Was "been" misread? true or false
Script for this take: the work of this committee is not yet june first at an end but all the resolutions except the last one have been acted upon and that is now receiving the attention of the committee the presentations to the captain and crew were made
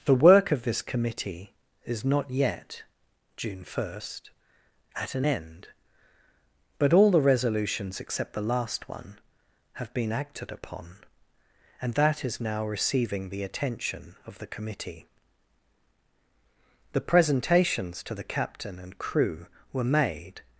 false